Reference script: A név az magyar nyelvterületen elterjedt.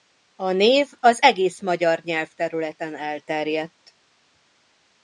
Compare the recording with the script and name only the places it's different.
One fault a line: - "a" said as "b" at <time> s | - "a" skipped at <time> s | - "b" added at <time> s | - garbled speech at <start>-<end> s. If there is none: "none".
- "egész" added at 1.2 s